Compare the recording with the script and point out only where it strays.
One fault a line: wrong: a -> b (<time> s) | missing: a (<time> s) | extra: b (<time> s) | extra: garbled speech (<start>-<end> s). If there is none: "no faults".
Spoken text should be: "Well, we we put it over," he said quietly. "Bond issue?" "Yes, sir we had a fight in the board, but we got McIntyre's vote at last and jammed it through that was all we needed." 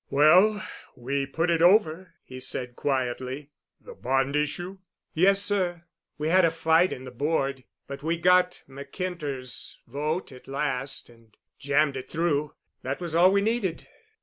missing: we (1.3 s)
extra: The (3.8 s)